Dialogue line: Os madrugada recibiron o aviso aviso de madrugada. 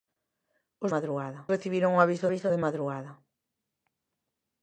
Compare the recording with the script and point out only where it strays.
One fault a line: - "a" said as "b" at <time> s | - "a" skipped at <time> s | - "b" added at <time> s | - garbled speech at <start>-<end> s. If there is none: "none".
none